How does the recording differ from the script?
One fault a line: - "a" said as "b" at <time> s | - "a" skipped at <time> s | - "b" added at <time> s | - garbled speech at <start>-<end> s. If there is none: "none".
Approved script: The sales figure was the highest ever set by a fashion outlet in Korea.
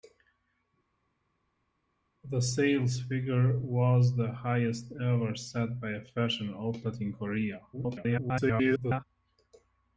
- garbled speech at 7.7-9.0 s